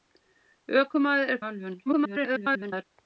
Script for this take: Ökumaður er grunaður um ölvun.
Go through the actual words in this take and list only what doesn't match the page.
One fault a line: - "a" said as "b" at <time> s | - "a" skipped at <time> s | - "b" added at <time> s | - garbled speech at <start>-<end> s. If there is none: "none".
- "grunaður" skipped at 1.4 s
- garbled speech at 1.9-2.8 s